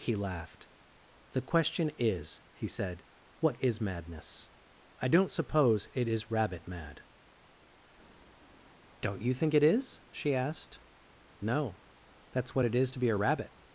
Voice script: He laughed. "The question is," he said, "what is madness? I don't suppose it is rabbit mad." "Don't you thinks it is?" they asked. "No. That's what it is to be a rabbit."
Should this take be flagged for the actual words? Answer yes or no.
yes